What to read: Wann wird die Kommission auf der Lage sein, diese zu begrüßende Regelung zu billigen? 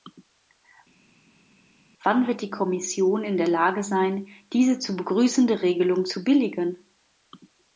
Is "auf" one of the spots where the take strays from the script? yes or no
yes